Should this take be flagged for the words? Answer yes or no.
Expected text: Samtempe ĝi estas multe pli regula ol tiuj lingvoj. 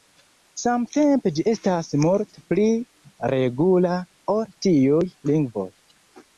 no